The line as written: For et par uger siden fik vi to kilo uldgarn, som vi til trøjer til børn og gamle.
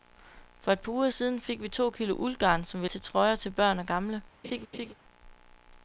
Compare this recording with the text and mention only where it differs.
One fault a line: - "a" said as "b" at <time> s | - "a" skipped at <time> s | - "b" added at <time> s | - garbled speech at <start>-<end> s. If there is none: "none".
none